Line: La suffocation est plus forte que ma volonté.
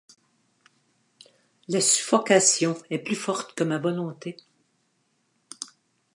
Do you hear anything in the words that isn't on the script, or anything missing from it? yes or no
no